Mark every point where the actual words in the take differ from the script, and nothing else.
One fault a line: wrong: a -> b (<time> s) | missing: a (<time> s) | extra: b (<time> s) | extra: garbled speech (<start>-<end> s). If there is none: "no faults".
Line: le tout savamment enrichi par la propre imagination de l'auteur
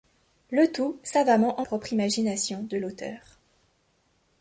missing: enrichi par la (1.6 s)